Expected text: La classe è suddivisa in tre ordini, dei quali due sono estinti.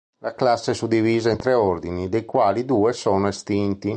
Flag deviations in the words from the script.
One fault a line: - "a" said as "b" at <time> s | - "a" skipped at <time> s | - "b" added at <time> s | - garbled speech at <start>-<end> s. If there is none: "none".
none